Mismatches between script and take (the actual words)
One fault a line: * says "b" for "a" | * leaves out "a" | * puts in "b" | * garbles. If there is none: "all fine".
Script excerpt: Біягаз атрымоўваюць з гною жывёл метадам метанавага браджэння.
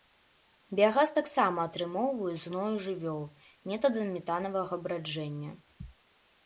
* puts in "таксама"